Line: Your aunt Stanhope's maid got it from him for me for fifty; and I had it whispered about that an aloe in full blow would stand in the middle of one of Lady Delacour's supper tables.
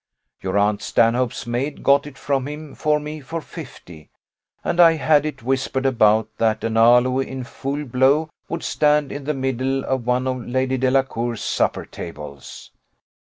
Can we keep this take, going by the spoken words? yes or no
yes